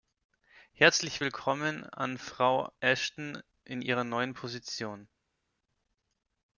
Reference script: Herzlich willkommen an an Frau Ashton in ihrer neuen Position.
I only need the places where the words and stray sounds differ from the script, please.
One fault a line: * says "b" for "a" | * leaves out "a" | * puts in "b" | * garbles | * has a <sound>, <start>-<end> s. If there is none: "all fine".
* leaves out "an"